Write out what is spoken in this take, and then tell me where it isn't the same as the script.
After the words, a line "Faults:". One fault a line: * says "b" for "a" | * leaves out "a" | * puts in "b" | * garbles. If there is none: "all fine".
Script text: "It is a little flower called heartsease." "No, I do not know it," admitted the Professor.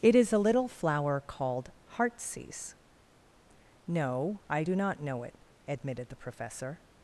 "It is a little flower called heartsease." "No, I do not know it," admitted the Professor.
Faults:
all fine